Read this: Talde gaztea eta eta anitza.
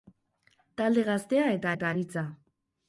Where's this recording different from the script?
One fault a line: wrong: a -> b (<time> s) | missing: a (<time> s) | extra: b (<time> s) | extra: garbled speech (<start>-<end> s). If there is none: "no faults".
no faults